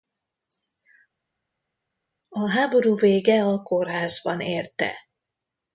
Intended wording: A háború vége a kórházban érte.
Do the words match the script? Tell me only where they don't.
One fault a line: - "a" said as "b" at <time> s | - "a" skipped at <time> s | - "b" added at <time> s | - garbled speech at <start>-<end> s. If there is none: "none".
none